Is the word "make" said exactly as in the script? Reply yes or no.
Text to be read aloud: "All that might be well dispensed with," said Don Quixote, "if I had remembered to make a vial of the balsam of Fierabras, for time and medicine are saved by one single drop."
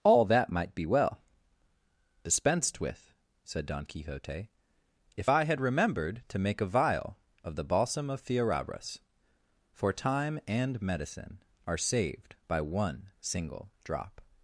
yes